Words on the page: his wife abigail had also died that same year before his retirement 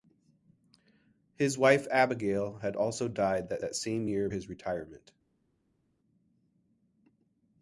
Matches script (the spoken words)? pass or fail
fail